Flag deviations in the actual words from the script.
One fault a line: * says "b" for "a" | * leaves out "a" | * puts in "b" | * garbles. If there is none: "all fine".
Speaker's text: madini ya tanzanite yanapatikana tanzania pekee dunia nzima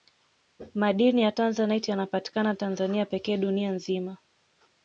all fine